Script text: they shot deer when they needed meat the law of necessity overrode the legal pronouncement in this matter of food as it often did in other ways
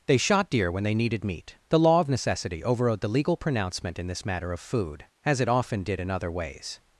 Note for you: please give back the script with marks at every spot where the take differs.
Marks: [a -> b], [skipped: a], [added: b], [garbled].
they shot deer when they needed meat the law of necessity overrode the legal pronouncement in this matter of food as it often did in other ways